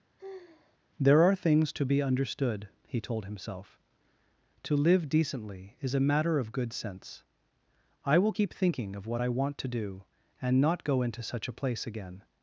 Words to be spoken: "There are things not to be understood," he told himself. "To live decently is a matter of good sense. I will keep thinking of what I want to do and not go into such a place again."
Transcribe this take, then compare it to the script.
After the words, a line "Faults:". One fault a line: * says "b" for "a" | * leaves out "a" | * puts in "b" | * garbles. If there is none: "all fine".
"There are things to be understood," he told himself. "To live decently is a matter of good sense. I will keep thinking of what I want to do and not go into such a place again."
Faults:
* leaves out "not"